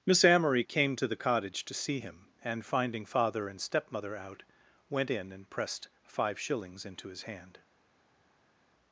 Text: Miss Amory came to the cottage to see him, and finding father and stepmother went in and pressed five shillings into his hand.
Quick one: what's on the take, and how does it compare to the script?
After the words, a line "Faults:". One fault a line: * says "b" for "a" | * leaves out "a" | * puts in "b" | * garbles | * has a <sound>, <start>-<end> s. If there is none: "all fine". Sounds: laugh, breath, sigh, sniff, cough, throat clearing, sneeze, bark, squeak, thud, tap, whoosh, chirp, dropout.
Miss Amory came to the cottage to see him, and finding father and stepmother out, went in and pressed five shillings into his hand.
Faults:
* puts in "out"